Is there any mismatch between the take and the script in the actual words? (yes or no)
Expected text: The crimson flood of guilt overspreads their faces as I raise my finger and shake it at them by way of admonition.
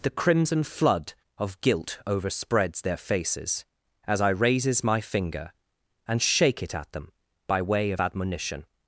yes